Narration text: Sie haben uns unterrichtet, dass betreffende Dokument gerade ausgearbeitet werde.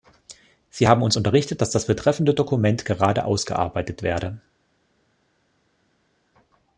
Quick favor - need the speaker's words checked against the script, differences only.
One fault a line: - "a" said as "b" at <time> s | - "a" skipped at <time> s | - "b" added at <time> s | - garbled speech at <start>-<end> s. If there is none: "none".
- "das" added at 1.7 s